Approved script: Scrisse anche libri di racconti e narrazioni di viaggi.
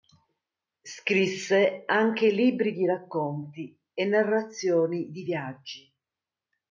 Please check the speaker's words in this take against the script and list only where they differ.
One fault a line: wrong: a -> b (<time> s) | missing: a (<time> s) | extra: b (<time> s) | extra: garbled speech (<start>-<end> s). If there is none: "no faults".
no faults